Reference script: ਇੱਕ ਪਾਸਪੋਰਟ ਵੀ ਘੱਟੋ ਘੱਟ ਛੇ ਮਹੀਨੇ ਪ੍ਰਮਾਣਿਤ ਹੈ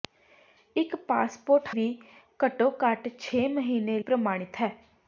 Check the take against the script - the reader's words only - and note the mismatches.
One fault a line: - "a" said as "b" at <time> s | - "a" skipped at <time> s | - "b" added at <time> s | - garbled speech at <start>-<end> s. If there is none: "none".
none